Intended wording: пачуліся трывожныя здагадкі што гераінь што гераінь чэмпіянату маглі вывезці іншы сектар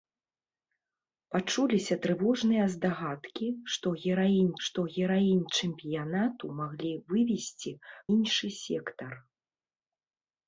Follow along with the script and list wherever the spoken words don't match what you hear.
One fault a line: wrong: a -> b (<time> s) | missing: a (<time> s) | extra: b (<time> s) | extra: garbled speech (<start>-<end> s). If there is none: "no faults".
no faults